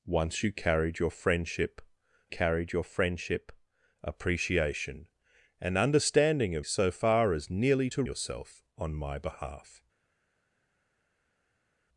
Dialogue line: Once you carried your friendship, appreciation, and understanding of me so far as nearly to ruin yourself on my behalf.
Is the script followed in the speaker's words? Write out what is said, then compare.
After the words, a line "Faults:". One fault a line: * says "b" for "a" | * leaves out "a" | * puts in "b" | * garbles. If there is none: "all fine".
Once you carried your friendship carried your friendship, appreciation, and understanding of so far as nearly to yourself on my behalf.
Faults:
* puts in "carried your friendship"
* leaves out "me"
* leaves out "ruin"